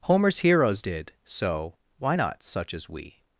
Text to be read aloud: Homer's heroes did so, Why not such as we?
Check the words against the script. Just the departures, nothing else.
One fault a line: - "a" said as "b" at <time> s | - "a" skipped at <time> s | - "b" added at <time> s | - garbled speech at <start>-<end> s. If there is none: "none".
none